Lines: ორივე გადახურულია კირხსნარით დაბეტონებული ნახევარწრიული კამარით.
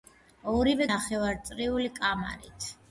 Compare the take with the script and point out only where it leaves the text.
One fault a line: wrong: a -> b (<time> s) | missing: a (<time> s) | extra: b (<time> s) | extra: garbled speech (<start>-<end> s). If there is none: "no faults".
missing: გადახურულია კირხსნარით დაბეტონებული (0.9 s)